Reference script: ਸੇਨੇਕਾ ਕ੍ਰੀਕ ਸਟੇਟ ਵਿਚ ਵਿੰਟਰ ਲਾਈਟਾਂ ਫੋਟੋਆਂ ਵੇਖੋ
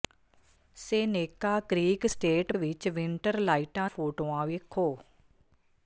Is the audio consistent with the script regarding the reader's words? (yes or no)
yes